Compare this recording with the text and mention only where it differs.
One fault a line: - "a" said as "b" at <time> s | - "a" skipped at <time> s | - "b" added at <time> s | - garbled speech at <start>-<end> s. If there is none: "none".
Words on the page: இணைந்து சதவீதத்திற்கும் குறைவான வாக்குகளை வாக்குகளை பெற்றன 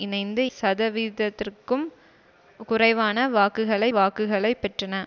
none